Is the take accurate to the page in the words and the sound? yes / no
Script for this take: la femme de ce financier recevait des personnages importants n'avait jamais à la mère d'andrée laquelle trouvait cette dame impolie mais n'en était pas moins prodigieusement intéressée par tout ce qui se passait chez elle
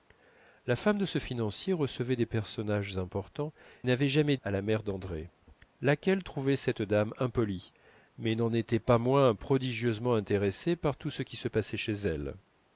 yes